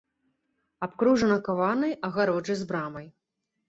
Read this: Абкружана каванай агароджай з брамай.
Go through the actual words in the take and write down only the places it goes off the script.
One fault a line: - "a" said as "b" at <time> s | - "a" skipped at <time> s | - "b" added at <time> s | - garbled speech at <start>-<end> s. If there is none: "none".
none